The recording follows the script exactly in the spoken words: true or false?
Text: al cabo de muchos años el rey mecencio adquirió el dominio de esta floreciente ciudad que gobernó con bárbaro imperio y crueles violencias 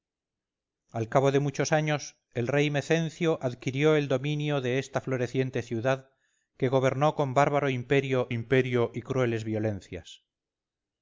false